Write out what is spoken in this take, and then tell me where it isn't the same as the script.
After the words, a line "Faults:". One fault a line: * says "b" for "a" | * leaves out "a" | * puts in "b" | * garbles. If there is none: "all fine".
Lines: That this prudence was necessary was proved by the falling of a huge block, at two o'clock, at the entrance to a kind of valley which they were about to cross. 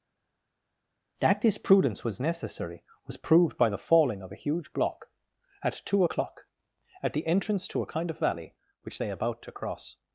That this prudence was necessary was proved by the falling of a huge block, at two o'clock, at the entrance to a kind of valley which they about to cross.
Faults:
* leaves out "were"